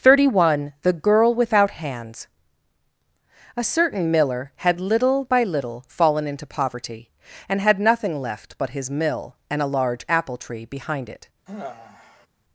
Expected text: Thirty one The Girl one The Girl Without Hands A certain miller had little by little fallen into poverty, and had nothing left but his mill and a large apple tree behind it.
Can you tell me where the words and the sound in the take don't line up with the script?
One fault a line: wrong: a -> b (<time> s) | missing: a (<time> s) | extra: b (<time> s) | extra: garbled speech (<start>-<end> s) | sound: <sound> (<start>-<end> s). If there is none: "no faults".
missing: one The Girl (1.4 s)
sound: sigh (11.5-12.3 s)